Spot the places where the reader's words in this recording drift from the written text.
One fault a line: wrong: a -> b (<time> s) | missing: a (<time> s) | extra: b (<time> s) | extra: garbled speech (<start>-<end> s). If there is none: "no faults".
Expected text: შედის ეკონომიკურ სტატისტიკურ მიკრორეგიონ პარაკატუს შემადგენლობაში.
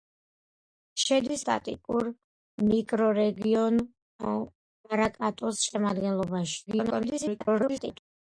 missing: ეკონომიკურ (1.4 s)
extra: garbled speech (6.7-8.0 s)